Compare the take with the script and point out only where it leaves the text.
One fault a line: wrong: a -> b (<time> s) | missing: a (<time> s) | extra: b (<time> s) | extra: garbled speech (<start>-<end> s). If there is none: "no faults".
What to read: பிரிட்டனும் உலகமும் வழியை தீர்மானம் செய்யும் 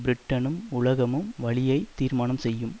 no faults